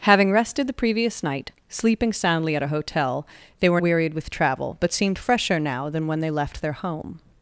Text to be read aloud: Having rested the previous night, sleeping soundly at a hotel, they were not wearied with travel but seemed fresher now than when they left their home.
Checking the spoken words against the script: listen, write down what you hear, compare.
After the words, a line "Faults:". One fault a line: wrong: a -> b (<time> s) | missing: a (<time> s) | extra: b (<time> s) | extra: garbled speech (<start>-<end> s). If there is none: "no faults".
Having rested the previous night, sleeping soundly at a hotel, they were wearied with travel but seemed fresher now than when they left their home.
Faults:
missing: not (3.8 s)